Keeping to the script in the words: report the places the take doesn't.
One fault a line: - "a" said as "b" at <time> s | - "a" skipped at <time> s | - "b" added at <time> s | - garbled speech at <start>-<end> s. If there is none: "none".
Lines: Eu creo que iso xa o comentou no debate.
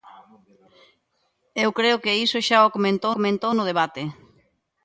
- "comentou" added at 3.2 s